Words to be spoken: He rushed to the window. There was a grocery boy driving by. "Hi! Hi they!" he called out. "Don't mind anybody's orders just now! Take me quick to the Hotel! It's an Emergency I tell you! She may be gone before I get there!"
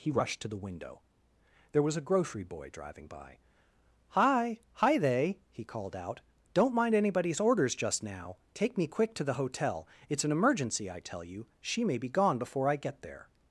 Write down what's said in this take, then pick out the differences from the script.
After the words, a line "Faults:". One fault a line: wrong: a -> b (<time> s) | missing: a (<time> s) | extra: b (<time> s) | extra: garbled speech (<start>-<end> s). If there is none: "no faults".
He rushed to the window. There was a grocery boy driving by. "Hi! Hi they!" he called out. "Don't mind anybody's orders just now! Take me quick to the Hotel! It's an Emergency I tell you! She may be gone before I get there!"
Faults:
no faults